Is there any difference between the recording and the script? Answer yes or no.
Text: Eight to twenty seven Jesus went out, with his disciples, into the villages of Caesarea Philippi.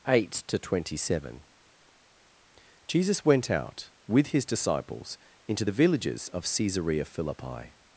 no